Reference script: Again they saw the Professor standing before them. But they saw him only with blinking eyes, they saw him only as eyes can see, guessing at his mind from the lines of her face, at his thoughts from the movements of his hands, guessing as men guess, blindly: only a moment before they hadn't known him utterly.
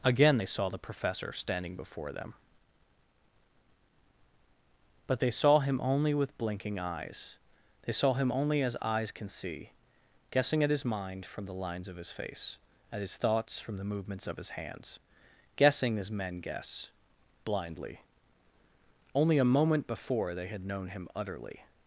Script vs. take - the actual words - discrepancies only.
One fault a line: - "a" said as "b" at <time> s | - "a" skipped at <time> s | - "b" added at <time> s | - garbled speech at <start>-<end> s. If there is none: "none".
- "her" said as "his" at 12.0 s
- "hadn't" said as "had" at 20.5 s